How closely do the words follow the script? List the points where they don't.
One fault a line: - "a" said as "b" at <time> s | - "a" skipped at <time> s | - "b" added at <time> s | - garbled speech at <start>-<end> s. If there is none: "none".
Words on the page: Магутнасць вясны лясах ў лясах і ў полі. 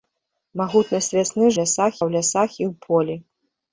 none